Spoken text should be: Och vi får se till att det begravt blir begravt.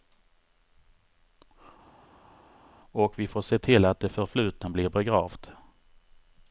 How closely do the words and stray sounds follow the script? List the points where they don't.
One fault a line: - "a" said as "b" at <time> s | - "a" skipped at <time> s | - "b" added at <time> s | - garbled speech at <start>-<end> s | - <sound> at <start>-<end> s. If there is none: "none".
- "begravt" said as "förflutna" at 4.1 s